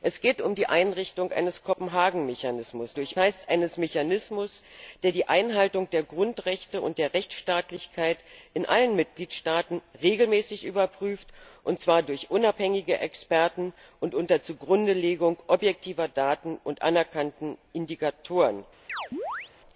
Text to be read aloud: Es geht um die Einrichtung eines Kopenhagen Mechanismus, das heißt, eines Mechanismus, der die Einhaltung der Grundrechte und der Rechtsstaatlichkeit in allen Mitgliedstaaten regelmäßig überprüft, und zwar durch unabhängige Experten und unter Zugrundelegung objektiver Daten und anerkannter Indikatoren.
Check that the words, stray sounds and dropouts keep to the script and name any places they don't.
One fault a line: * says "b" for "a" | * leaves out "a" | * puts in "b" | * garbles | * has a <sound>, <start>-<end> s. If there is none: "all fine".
* says "durch" for "das"
* has a chirp, 18.9-19.5 s